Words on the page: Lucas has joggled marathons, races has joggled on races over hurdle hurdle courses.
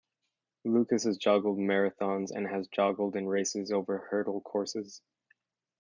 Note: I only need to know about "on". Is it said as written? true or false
false